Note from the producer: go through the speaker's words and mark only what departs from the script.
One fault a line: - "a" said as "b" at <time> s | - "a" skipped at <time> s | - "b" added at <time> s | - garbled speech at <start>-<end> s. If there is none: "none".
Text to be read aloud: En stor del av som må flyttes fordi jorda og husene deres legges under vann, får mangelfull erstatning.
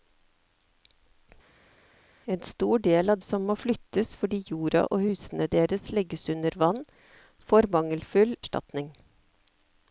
none